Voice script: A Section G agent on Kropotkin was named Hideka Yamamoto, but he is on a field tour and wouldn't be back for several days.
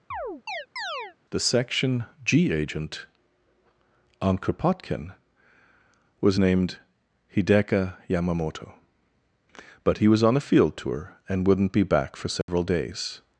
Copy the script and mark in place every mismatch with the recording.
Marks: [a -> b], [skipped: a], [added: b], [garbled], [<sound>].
[chirp] [A -> The] Section G agent on Kropotkin was named Hideka Yamamoto, but he [is -> was] on a field tour and wouldn't be back for several [dropout] days.